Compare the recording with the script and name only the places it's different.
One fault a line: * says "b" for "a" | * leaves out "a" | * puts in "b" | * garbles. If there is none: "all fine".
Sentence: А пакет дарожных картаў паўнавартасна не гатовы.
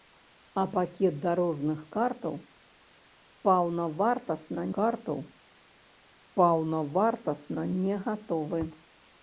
* puts in "картаў паўнавартасна"